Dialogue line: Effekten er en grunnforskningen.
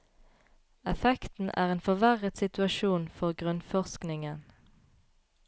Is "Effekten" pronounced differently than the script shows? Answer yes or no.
no